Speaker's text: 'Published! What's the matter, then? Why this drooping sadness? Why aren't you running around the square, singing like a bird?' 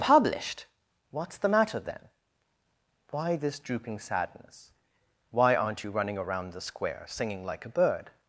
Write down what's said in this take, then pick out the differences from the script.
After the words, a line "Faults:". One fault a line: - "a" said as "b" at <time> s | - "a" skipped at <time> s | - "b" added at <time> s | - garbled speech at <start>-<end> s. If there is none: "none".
'Published! What's the matter, then? Why this drooping sadness? Why aren't you running around the square, singing like a bird?'
Faults:
none